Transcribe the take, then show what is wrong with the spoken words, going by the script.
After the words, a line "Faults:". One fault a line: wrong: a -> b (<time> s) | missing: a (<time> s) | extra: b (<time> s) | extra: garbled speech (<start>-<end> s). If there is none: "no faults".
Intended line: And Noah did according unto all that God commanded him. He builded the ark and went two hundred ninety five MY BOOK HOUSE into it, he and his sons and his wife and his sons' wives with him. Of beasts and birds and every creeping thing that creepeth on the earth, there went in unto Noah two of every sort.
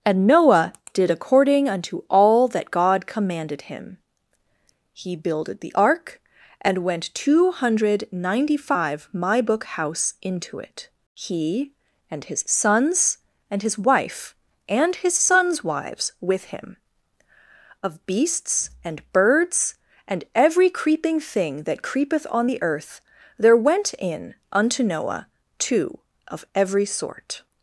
And Noah did according unto all that God commanded him. He builded the ark and went two hundred ninety five MY BOOK HOUSE into it, he and his sons and his wife and his sons' wives with him. Of beasts and birds and every creeping thing that creepeth on the earth, there went in unto Noah two of every sort.
Faults:
no faults